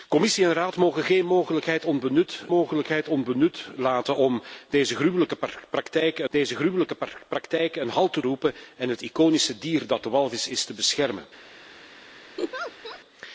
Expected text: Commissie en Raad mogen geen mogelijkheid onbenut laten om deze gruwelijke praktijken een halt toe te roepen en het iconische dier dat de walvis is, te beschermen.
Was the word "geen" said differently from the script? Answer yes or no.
no